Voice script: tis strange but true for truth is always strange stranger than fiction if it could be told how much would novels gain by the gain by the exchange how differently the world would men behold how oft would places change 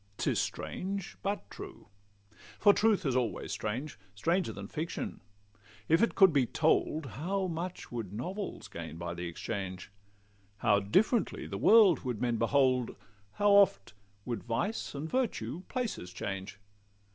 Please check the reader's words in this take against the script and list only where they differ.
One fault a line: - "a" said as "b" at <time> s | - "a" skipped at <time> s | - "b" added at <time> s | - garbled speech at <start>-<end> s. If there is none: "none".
- "gain by the" skipped at 9.3 s
- "vice and virtue" added at 14.4 s